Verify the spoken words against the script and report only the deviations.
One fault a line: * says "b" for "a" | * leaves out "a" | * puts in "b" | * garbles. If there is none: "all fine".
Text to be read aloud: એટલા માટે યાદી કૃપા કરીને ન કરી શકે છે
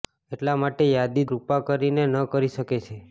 all fine